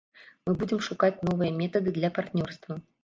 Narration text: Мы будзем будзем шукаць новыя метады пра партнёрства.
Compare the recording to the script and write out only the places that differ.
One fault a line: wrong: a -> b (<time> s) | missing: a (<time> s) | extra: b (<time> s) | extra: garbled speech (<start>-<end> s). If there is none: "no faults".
missing: будзем (0.8 s)
wrong: пра -> для (2.0 s)